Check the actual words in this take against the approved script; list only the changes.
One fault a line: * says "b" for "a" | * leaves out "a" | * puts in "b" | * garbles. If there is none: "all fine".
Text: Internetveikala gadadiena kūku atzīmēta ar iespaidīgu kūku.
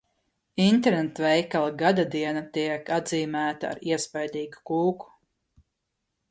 * says "tiek" for "kūku"